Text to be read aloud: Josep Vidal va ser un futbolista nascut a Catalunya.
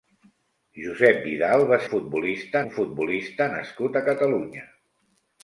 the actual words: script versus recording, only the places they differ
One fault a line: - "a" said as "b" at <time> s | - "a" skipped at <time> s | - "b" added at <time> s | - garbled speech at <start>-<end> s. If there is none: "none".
- "ser" said as "futbolista" at 1.9 s